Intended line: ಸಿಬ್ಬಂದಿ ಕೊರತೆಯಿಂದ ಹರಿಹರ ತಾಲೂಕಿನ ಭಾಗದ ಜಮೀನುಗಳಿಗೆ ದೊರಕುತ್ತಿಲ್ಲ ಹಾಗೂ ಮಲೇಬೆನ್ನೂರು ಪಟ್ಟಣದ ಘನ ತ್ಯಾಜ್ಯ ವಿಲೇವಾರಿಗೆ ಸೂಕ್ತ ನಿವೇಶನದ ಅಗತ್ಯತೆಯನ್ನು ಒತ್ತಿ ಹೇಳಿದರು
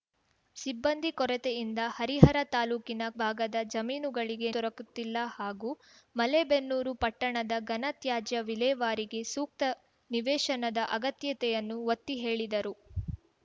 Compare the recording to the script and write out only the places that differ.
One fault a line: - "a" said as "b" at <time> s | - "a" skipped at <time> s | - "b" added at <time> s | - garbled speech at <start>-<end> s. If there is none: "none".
none